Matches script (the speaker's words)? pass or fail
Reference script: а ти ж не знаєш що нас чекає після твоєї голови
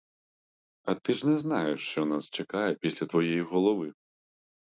pass